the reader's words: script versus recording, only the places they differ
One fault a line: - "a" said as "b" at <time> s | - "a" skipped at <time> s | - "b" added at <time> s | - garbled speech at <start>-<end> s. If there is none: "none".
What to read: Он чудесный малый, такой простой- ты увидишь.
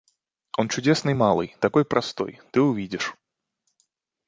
none